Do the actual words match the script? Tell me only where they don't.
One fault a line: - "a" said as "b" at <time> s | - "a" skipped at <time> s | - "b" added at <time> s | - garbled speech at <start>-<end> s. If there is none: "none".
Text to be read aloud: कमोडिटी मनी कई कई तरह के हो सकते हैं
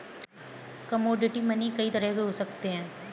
- "कई" skipped at 1.9 s